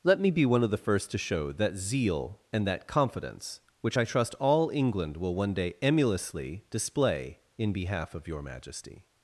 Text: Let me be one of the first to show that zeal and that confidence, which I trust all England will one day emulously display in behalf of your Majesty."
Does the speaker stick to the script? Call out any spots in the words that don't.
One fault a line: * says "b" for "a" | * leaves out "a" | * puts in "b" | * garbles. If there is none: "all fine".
all fine